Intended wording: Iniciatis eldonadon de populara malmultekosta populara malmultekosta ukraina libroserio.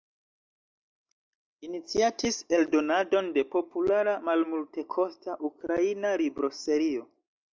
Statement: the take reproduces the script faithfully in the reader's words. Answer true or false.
false